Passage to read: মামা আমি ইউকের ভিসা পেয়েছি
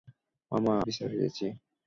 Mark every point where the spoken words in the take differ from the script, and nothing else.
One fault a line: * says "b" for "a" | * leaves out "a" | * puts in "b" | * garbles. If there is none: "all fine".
* leaves out "আমি ইউকের"